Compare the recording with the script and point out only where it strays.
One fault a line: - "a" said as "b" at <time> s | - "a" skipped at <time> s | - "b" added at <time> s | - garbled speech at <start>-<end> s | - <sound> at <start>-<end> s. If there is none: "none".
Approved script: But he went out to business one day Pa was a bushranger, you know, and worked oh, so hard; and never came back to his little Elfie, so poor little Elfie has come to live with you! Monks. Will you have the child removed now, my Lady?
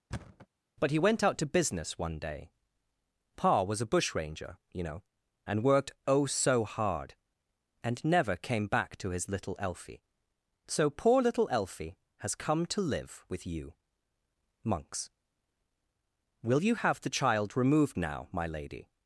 - thud at 0.1-0.5 s